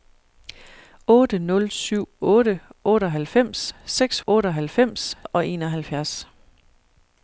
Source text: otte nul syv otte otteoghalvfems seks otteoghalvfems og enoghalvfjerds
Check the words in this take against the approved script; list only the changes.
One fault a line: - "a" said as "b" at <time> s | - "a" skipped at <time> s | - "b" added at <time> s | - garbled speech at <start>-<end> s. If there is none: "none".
none